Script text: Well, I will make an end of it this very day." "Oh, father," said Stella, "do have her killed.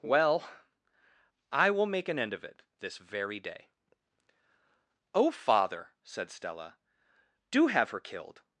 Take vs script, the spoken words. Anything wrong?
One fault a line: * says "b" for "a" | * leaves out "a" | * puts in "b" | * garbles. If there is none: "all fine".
all fine